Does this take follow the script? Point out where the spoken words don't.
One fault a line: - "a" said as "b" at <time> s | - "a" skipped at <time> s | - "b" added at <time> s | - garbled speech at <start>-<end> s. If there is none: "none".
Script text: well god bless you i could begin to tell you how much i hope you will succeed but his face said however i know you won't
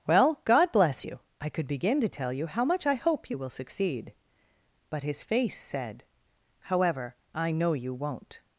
none